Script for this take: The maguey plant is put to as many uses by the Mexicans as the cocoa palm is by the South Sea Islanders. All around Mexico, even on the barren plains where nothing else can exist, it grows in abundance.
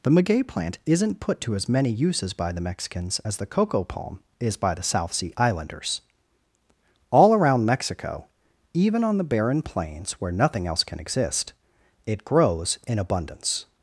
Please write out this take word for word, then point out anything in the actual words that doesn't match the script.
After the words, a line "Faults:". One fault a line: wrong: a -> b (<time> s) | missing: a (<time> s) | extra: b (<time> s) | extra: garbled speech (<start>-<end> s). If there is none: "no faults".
The maguey plant isn't put to as many uses by the Mexicans as the cocoa palm is by the South Sea Islanders. All around Mexico, even on the barren plains where nothing else can exist, it grows in abundance.
Faults:
wrong: is -> isn't (0.9 s)